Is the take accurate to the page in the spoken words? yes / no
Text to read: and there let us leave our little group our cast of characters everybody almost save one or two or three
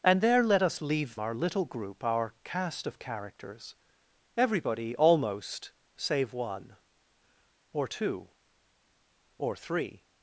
yes